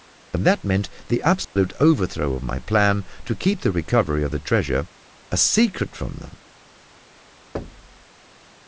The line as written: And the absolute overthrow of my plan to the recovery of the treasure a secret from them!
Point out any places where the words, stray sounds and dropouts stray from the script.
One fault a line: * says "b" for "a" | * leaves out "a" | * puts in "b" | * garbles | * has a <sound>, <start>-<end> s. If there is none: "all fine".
* puts in "that meant"
* has a dropout, 1.4-1.6 s
* puts in "keep"
* has a thud, 7.5-8.0 s